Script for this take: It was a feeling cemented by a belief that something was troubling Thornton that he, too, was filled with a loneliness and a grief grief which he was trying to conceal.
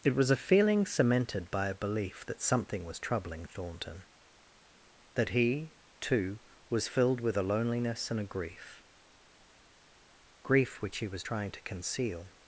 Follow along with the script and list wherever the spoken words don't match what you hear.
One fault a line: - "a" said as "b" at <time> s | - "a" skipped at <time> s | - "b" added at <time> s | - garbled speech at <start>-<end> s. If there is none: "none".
none